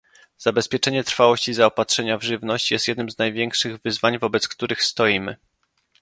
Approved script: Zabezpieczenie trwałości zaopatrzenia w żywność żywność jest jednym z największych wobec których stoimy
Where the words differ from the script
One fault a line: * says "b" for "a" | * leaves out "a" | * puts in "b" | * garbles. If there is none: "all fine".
* leaves out "żywność"
* puts in "wyzwań"